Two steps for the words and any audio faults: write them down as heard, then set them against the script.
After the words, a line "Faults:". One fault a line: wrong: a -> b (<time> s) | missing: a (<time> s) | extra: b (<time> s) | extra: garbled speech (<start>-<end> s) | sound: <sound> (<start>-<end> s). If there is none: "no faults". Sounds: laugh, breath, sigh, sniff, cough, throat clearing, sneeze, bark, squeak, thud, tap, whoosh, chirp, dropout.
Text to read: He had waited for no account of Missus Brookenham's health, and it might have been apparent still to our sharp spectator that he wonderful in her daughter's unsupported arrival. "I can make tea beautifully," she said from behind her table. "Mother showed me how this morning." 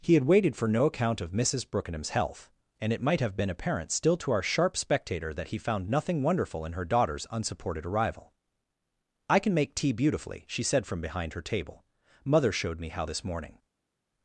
He had waited for no account of Missus Brookenham's health, and it might have been apparent still to our sharp spectator that he found nothing wonderful in her daughter's unsupported arrival. "I can make tea beautifully," she said from behind her table. "Mother showed me how this morning."
Faults:
extra: found nothing (5.6 s)